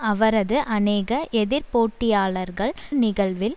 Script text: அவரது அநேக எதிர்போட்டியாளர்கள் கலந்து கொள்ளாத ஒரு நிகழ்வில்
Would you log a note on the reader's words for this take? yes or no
yes